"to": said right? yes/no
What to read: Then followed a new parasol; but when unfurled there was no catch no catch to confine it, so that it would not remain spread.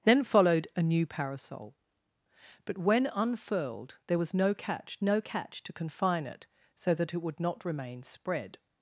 yes